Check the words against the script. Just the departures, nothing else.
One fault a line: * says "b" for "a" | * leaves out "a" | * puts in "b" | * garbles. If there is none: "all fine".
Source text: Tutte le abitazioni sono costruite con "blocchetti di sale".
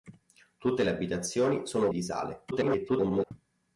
* leaves out "costruite con blocchetti"
* garbles